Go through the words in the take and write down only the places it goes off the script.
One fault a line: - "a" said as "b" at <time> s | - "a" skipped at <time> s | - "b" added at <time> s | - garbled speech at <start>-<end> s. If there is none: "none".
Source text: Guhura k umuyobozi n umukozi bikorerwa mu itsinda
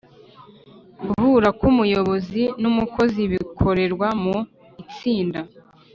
none